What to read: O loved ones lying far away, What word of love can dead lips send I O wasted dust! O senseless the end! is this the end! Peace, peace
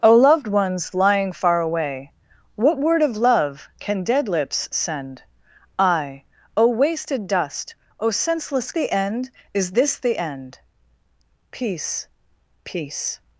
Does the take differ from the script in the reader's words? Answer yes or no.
no